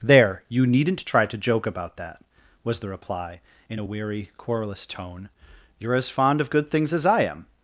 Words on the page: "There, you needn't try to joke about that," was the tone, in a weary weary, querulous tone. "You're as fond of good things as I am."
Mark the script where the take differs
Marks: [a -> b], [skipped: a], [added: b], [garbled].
"There, you needn't try to joke about that," was the [tone, -> reply] in a weary [skipped: weary,] querulous tone. "You're as fond of good things as I am."